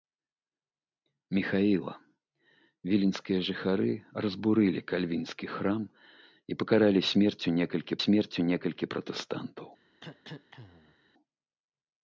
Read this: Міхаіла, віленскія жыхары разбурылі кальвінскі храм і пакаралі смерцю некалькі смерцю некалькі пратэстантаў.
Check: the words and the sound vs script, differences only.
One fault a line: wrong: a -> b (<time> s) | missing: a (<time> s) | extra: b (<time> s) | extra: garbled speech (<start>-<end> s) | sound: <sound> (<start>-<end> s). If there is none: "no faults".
sound: cough (10.0-11.0 s)